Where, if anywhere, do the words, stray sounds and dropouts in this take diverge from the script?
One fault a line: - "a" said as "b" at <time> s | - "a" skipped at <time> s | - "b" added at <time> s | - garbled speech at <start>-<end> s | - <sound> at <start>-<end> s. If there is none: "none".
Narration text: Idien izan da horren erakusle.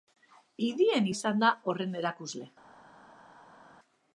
none